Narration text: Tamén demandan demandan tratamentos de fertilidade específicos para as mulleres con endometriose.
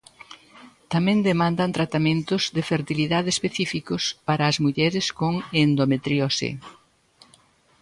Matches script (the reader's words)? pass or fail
fail